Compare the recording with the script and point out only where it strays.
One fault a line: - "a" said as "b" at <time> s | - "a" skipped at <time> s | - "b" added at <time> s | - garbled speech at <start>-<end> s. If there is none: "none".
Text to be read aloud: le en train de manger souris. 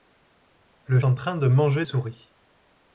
none